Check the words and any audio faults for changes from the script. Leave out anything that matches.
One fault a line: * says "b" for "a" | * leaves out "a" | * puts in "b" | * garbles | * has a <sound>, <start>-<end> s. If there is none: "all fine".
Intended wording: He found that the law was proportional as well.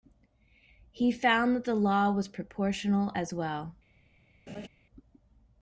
* has a laugh, 4.5-4.7 s